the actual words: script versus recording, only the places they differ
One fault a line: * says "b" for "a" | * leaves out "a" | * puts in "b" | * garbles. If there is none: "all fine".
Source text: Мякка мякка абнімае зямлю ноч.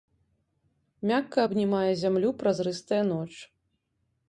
* leaves out "мякка"
* puts in "празрыстая"